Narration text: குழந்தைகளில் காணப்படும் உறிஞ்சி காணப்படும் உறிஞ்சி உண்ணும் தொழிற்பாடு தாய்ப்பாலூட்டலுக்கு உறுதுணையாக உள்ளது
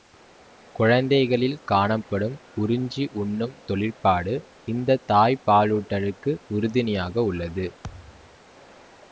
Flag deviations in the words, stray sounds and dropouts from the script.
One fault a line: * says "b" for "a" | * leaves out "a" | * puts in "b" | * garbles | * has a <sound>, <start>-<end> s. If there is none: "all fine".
* leaves out "காணப்படும் உறிஞ்சி"
* puts in "இந்த"
* has a thud, 7.8-8.4 s